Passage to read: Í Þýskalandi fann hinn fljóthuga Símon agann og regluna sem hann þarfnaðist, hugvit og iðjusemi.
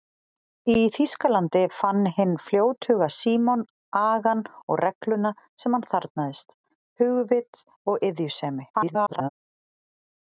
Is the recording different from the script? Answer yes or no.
yes